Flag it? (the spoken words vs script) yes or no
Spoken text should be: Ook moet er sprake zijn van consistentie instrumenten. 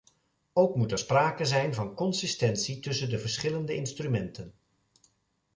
yes